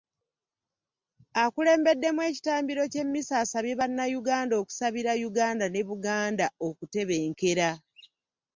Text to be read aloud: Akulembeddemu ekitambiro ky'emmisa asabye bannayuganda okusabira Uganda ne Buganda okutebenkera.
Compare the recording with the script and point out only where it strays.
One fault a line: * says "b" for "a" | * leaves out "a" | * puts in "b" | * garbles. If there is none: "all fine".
all fine